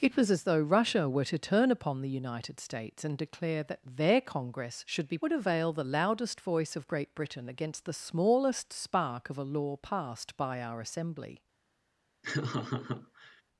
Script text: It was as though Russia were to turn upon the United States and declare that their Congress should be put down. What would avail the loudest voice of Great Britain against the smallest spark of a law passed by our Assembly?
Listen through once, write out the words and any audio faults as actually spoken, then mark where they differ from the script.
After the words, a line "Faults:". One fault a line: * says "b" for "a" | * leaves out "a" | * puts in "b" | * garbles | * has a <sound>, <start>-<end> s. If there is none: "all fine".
It was as though Russia were to turn upon the United States and declare that their Congress should be would avail the loudest voice of Great Britain against the smallest spark of a law passed by our Assembly?
Faults:
* leaves out "put down What"
* has a laugh, 12.2-13.4 s